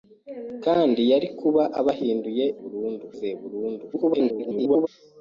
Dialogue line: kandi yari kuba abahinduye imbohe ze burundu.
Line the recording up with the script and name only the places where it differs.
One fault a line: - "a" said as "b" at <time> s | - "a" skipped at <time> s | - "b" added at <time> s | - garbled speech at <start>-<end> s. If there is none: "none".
- "imbohe" said as "burundu" at 2.6 s
- garbled speech at 3.9-4.9 s